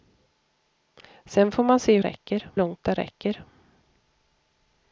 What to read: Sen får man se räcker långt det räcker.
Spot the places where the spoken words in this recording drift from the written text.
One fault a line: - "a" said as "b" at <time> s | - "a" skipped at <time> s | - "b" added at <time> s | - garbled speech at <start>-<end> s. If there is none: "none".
none